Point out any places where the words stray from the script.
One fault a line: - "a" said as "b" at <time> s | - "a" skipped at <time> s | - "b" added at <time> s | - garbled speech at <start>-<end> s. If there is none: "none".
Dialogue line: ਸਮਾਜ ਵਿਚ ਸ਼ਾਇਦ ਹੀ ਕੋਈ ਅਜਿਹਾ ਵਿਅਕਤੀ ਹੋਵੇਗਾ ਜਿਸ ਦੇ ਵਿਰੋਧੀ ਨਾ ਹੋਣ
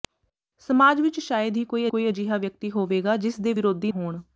- "ਕੋਈ" added at 1.9 s
- "ਨਾ" skipped at 3.9 s